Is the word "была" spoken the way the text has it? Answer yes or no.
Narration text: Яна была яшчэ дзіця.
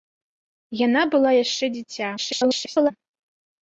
yes